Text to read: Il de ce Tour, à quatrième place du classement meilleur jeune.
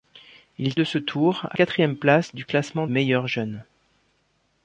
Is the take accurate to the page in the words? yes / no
yes